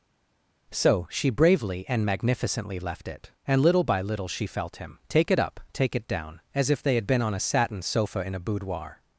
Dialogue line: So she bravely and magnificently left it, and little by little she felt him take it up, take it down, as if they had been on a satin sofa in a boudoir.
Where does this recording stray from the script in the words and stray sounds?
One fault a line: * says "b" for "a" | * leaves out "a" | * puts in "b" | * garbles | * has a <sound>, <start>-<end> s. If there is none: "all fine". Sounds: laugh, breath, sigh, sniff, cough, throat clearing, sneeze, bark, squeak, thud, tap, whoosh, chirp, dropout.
all fine